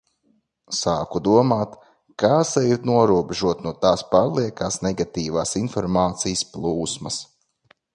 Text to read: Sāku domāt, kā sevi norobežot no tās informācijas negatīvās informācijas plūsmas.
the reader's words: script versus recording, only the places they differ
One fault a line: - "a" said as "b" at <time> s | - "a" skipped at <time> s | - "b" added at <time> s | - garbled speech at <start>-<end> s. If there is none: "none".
- "informācijas" said as "pārliekās" at 4.2 s